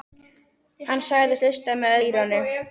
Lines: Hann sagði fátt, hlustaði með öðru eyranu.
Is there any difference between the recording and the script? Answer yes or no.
yes